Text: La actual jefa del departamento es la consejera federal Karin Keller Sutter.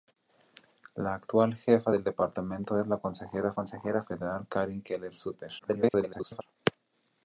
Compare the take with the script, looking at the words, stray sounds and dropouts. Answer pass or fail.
fail